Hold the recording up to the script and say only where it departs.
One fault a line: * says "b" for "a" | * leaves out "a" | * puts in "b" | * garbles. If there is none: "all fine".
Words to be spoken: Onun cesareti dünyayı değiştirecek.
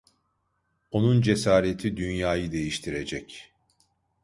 all fine